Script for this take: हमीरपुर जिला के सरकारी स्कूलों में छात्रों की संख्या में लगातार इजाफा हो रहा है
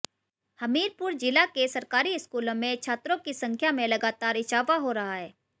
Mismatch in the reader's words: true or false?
false